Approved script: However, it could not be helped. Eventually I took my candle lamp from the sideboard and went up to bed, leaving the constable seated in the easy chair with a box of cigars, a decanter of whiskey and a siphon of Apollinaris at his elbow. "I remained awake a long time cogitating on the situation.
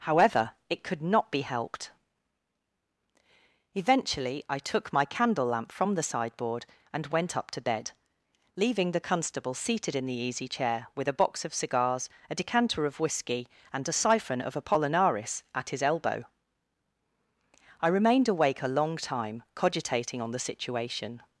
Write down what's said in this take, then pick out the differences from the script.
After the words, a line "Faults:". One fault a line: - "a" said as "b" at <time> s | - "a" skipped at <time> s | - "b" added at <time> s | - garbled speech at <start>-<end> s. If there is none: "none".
However, it could not be helped. Eventually I took my candle lamp from the sideboard and went up to bed, leaving the constable seated in the easy chair with a box of cigars, a decanter of whiskey and a siphon of Apollinaris at his elbow. "I remained awake a long time cogitating on the situation.
Faults:
none